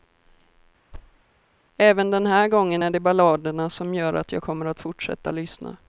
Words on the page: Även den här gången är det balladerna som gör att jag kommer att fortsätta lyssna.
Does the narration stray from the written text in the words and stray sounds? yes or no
yes